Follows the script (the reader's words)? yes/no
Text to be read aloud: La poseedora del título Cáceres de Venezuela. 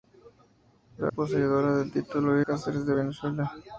yes